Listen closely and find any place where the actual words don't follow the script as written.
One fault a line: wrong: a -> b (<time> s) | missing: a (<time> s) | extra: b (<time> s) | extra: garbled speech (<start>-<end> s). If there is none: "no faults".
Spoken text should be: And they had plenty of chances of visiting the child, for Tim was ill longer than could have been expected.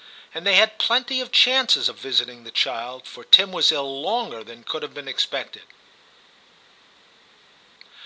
no faults